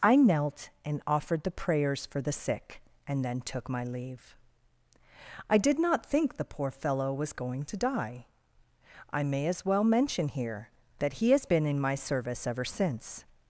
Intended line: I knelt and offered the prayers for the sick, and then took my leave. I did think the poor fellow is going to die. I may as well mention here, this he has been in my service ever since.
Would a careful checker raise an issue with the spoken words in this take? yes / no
yes